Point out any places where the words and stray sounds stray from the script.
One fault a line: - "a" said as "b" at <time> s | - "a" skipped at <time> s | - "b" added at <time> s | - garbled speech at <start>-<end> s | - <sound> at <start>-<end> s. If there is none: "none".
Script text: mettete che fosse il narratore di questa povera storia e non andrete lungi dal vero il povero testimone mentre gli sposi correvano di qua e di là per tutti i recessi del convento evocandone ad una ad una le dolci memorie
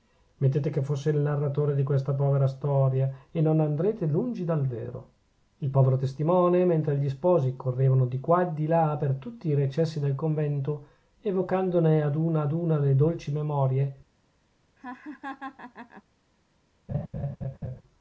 - laugh at 14.8-16.0 s
- laugh at 16.9-17.8 s